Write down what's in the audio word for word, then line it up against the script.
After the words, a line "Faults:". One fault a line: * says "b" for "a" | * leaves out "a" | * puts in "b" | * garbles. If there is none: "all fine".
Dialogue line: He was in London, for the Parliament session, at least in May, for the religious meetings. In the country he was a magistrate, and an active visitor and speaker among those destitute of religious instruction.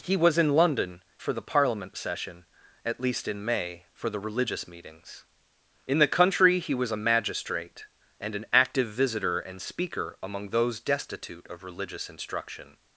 He was in London, for the Parliament session, at least in May, for the religious meetings. In the country he was a magistrate, and an active visitor and speaker among those destitute of religious instruction.
Faults:
all fine